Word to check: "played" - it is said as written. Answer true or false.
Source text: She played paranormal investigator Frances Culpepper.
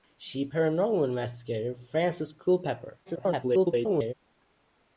false